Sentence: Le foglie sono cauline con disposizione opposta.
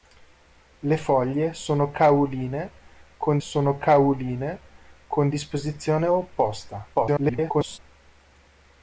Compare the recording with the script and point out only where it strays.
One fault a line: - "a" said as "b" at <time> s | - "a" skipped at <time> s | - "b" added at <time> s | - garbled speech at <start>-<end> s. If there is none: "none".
- "sono cauline con" added at 3.4 s
- garbled speech at 6.9-7.8 s